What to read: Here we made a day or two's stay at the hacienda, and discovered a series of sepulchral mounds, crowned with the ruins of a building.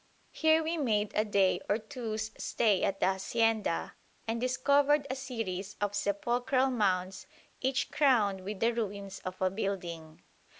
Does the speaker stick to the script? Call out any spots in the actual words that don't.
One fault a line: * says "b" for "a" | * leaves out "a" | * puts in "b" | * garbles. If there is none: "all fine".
* puts in "each"